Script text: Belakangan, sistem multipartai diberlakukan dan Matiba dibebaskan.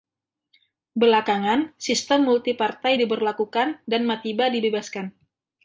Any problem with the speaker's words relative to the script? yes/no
no